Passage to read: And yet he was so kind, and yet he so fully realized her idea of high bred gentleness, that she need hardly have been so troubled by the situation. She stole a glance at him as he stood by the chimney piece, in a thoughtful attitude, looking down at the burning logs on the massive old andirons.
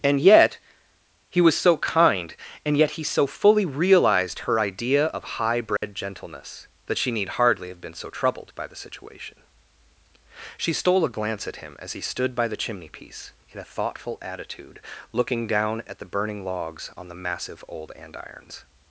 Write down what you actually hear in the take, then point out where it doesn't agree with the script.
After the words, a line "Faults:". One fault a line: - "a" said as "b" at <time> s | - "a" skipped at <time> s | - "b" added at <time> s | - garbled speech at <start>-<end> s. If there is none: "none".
And yet he was so kind, and yet he so fully realized her idea of high bred gentleness, that she need hardly have been so troubled by the situation. She stole a glance at him as he stood by the chimney piece, in a thoughtful attitude, looking down at the burning logs on the massive old andirons.
Faults:
none